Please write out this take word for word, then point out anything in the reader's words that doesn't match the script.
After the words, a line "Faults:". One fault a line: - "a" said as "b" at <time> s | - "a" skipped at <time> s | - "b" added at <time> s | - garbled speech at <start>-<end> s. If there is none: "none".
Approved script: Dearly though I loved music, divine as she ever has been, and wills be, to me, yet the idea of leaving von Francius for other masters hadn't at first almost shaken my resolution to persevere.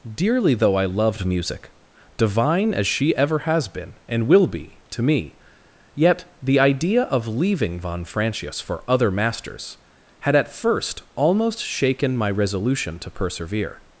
Dearly though I loved music, divine as she ever has been, and will be, to me, yet the idea of leaving von Francius for other masters had at first almost shaken my resolution to persevere.
Faults:
- "wills" said as "will" at 4.3 s
- "hadn't" said as "had" at 10.2 s